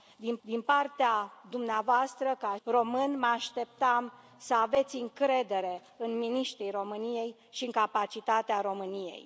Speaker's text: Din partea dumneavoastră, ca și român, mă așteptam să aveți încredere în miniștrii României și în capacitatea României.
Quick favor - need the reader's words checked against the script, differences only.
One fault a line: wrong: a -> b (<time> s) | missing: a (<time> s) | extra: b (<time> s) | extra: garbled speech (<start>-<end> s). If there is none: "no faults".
extra: din (0.4 s)
missing: și (2.6 s)